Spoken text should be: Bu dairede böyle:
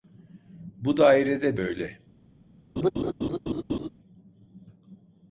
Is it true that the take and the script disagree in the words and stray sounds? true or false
true